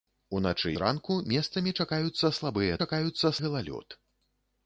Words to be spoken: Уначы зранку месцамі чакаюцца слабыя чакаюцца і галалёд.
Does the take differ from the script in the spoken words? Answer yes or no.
no